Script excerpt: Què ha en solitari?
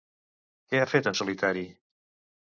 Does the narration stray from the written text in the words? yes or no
yes